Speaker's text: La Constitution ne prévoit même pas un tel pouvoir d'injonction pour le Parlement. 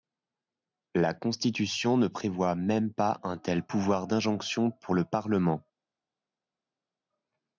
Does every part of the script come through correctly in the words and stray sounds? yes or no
yes